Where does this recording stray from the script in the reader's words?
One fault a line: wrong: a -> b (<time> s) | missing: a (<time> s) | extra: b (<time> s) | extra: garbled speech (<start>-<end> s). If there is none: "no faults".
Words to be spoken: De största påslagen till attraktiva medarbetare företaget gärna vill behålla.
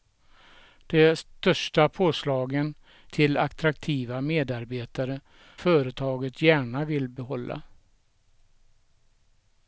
no faults